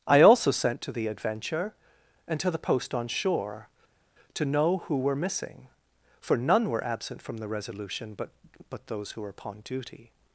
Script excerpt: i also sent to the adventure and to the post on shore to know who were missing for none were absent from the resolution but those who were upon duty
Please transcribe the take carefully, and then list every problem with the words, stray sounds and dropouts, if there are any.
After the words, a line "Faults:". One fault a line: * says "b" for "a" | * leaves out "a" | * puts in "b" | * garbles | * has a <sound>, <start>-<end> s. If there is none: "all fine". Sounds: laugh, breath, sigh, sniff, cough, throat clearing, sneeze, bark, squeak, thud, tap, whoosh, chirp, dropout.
i also sent to the adventure and to the post on shore to know who were missing for none were absent from the resolution but but those who were upon duty
Faults:
* puts in "but"